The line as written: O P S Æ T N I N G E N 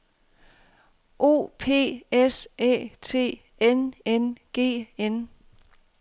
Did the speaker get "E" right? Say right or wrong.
wrong